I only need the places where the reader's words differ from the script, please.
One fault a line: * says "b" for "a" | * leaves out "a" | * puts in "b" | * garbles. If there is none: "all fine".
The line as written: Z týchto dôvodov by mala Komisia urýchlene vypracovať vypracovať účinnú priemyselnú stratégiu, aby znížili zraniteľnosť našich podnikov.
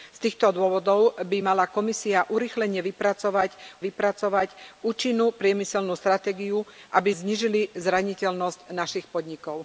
all fine